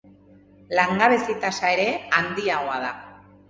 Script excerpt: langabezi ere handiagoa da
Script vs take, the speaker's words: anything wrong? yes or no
yes